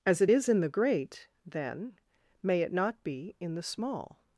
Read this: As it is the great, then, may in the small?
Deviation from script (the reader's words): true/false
true